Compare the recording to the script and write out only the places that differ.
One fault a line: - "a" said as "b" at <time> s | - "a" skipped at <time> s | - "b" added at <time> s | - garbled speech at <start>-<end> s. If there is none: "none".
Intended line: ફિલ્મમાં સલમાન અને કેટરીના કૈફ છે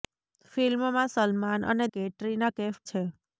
none